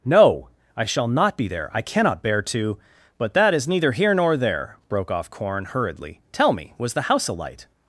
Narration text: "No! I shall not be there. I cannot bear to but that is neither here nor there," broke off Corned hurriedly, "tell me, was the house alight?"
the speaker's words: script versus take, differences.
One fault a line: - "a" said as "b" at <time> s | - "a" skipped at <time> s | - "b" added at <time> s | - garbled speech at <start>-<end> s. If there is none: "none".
- "Corned" said as "Corn" at 5.3 s